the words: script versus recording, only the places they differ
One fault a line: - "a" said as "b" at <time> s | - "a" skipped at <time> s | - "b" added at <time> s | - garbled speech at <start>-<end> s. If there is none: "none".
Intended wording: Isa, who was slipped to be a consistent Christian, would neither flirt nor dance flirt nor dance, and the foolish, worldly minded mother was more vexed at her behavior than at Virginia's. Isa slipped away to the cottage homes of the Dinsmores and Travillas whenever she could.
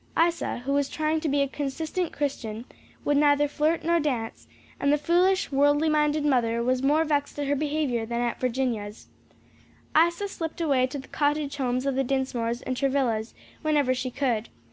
- "slipped" said as "trying" at 0.9 s
- "flirt nor dance" skipped at 4.5 s